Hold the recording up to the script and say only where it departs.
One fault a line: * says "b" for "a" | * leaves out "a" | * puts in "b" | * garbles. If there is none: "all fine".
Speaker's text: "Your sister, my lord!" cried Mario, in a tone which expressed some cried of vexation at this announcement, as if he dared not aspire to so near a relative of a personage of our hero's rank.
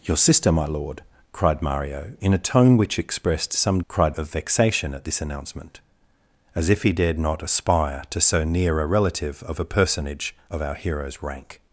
all fine